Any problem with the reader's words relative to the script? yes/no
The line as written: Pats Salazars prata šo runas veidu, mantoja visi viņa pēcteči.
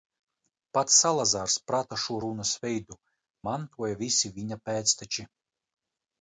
no